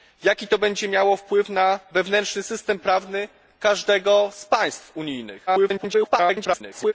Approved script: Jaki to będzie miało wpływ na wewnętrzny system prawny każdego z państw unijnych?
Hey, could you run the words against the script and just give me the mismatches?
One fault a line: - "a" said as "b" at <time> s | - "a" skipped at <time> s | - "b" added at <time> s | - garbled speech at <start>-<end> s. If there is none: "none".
- garbled speech at 5.5-6.9 s